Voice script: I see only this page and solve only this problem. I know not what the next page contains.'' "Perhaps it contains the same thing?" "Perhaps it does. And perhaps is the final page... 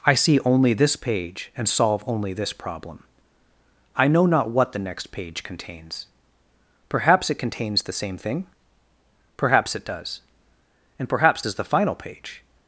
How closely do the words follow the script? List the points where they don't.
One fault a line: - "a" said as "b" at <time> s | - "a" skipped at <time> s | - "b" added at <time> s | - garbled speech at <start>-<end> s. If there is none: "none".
none